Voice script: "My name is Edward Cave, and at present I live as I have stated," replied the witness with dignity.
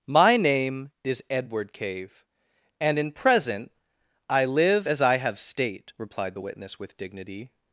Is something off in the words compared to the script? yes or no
yes